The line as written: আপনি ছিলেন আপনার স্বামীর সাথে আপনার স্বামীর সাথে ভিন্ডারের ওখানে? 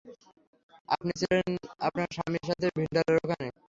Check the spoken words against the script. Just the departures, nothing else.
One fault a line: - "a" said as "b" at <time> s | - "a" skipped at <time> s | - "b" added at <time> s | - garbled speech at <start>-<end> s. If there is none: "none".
- "আপনার স্বামীর সাথে" skipped at 2.7 s